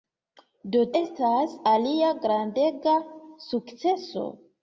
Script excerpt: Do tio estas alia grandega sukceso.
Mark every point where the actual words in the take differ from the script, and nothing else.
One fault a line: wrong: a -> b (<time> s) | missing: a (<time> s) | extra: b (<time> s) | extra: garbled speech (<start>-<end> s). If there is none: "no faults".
missing: tio (0.8 s)